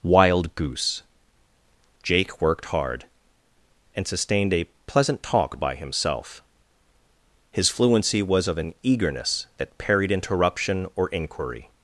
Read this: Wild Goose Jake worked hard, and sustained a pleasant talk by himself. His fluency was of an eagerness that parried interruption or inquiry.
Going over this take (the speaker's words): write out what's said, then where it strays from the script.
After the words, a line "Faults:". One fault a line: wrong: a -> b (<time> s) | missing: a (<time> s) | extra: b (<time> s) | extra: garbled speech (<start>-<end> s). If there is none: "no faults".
Wild Goose Jake worked hard, and sustained a pleasant talk by himself. His fluency was of an eagerness that parried interruption or inquiry.
Faults:
no faults